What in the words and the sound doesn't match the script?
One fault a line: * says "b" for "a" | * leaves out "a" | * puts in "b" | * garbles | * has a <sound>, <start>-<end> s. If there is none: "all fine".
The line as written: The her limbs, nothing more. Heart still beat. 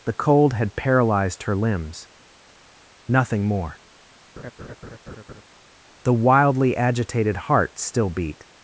* puts in "cold had paralyzed"
* has a laugh, 4.4-5.4 s
* puts in "The wildly agitated"